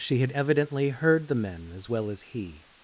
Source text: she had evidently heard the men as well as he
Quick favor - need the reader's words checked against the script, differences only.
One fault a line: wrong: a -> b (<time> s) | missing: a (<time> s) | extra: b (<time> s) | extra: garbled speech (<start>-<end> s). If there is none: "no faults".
no faults